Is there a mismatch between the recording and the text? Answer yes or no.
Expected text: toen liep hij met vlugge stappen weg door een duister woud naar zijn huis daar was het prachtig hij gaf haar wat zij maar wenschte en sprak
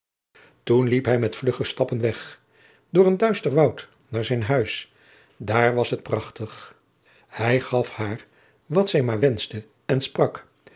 no